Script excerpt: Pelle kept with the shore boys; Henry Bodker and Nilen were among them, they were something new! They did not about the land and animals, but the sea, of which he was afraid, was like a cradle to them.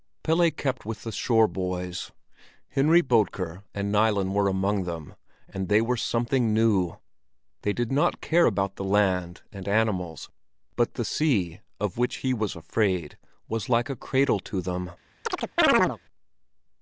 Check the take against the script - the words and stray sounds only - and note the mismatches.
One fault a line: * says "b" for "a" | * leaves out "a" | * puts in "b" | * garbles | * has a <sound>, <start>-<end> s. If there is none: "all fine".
* puts in "and"
* puts in "care"
* has a chirp, 15.2-16.0 s